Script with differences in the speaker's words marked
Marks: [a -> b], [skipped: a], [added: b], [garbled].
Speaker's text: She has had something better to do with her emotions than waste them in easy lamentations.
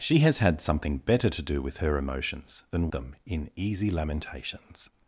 She has had something better to do with her emotions than [skipped: waste] them in easy lamentations.